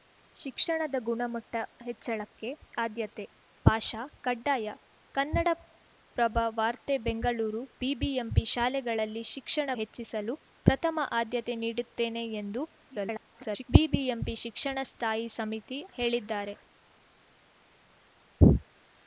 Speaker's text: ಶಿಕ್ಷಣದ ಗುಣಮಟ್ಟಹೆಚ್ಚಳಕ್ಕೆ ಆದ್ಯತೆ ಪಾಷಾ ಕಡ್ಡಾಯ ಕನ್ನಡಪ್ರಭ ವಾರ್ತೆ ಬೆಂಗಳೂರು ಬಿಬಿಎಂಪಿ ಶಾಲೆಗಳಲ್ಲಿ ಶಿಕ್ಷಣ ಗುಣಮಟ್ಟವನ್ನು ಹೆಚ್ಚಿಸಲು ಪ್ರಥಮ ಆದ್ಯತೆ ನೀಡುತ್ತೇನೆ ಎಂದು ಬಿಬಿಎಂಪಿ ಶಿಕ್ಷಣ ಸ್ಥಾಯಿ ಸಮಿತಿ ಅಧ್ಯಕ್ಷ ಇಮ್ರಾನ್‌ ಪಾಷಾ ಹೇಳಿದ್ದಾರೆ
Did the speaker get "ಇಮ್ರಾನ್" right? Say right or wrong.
wrong